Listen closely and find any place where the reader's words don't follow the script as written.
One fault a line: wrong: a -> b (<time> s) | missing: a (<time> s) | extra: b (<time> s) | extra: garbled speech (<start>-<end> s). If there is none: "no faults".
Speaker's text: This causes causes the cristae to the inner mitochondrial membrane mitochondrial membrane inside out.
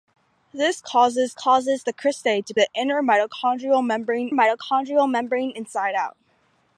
no faults